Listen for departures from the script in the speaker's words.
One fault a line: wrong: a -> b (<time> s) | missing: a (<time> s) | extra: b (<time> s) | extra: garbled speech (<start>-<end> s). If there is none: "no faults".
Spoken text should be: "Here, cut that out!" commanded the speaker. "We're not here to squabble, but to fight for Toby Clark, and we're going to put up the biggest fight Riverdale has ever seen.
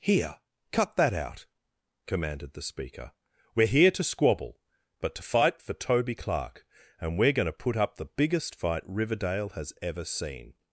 missing: not (3.7 s)